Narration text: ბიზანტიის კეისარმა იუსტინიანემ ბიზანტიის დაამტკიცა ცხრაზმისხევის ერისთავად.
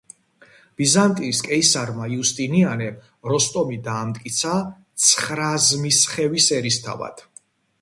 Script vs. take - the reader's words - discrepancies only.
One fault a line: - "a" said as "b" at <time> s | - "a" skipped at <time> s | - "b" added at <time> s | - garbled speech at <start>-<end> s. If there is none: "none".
- "ბიზანტიის" said as "როსტომი" at 3.3 s